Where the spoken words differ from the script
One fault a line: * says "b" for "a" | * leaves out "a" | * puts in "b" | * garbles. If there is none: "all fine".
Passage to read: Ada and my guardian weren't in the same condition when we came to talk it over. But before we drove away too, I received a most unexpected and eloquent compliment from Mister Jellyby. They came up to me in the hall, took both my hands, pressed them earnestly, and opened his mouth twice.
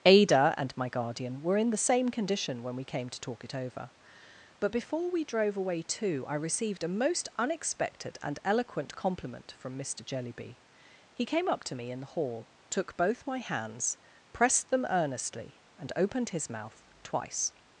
* says "were" for "weren't"
* says "He" for "They"